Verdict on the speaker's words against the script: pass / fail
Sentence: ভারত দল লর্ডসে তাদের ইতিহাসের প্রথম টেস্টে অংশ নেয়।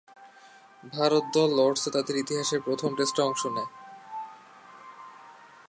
pass